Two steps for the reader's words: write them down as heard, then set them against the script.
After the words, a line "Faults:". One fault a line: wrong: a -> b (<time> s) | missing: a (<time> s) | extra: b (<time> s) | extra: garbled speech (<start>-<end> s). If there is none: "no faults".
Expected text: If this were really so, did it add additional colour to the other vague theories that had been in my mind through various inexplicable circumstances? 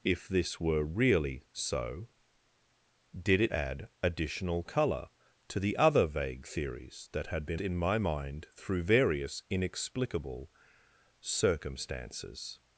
If this were really so, did it add additional colour to the other vague theories that had been in my mind through various inexplicable circumstances?
Faults:
no faults